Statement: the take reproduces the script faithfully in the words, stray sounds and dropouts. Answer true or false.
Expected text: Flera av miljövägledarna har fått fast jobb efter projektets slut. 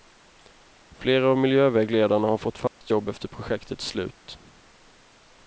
false